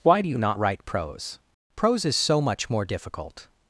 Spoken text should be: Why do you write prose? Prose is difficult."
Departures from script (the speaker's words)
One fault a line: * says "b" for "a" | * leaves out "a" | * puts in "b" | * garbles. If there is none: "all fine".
* puts in "not"
* puts in "so much more"